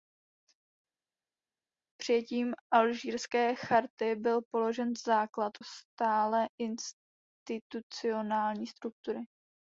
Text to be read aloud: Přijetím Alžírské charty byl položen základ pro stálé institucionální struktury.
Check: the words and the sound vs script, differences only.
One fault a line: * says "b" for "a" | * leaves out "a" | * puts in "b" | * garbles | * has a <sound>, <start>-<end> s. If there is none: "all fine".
* leaves out "pro"